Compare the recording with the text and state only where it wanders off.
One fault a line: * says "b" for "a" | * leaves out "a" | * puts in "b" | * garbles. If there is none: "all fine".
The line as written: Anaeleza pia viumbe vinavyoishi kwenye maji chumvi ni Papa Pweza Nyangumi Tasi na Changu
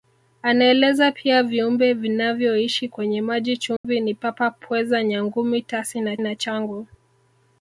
* puts in "na"